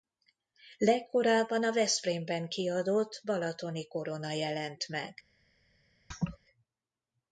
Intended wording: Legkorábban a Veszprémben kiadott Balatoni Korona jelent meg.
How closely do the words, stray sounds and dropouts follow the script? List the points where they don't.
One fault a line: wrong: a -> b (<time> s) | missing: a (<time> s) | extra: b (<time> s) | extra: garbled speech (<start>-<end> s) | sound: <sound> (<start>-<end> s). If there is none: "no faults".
sound: laugh (6.1-6.4 s)